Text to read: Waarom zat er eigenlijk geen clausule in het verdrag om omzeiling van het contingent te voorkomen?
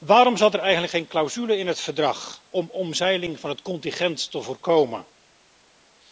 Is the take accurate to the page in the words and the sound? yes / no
yes